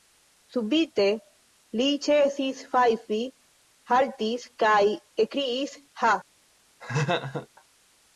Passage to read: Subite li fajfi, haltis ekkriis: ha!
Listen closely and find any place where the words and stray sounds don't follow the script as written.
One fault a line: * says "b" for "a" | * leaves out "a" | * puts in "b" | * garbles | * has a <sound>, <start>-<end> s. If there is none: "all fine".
* puts in "ĉesis"
* puts in "kaj"
* has a laugh, 6.8-7.5 s